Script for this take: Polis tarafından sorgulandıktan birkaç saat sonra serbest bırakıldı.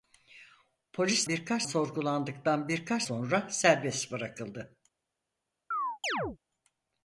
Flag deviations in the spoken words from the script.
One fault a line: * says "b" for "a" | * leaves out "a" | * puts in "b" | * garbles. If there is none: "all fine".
* says "birkaç" for "tarafından"
* leaves out "saat"